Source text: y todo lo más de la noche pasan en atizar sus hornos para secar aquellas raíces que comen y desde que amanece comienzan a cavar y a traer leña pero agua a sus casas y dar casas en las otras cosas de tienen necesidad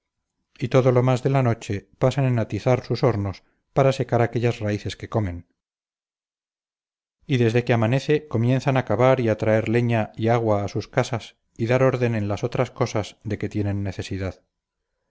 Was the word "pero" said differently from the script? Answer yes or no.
yes